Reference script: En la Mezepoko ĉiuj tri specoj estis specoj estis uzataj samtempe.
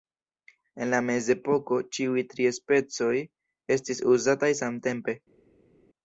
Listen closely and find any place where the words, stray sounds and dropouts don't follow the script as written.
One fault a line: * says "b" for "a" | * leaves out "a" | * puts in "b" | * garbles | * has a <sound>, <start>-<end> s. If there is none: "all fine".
* leaves out "specoj estis"